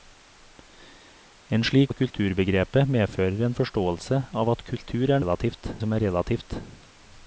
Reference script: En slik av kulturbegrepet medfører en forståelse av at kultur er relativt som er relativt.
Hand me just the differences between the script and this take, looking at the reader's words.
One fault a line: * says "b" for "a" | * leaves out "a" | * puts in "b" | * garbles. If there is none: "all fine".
all fine